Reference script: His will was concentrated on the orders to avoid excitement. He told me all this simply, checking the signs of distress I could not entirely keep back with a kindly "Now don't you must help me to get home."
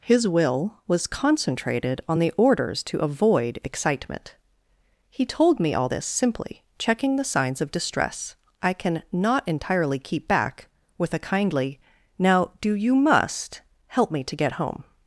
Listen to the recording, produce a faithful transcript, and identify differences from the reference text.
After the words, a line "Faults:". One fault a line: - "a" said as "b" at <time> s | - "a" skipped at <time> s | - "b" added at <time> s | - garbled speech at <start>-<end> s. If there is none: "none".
His will was concentrated on the orders to avoid excitement. He told me all this simply, checking the signs of distress I can not entirely keep back with a kindly "Now do you must help me to get home."
Faults:
- "could" said as "can" at 8.7 s
- "don't" said as "do" at 12.6 s